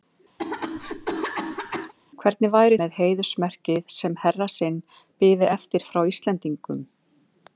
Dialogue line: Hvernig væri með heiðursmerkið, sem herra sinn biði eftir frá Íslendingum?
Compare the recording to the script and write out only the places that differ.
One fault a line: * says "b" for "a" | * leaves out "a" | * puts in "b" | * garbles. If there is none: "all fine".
all fine